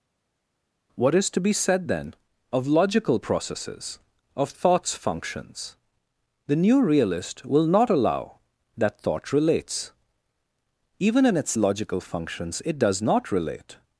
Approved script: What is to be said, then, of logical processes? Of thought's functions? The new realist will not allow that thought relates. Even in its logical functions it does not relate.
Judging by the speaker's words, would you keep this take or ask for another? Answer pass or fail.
pass